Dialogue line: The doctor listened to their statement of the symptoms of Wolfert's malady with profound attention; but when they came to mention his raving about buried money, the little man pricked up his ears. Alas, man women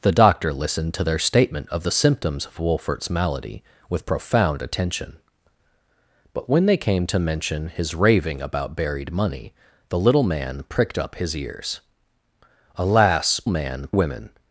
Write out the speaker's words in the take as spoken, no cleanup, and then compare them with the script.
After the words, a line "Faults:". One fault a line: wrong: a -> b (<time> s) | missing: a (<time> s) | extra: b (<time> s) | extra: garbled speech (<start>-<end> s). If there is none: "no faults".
The doctor listened to their statement of the symptoms of Wolfert's malady with profound attention; but when they came to mention his raving about buried money, the little man pricked up his ears. Alas, man women
Faults:
no faults